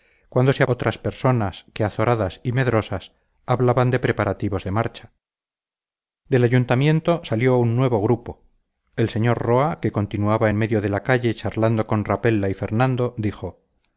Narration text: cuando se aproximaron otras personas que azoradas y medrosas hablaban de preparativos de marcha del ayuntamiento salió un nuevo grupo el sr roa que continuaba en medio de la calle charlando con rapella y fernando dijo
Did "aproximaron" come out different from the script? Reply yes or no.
yes